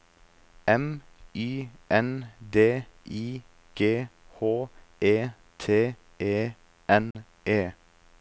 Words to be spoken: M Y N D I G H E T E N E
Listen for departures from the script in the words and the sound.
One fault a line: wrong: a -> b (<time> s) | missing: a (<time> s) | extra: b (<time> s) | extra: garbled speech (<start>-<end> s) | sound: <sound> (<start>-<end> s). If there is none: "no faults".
sound: dropout (7.1-7.1 s)